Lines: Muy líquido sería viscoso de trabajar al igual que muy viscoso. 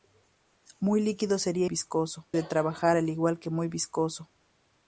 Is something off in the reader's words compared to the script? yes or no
no